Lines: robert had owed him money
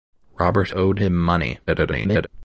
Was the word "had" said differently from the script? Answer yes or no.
yes